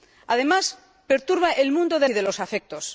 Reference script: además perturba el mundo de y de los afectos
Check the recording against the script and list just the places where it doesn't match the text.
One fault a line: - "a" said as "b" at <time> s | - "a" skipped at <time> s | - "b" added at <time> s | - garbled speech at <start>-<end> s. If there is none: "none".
none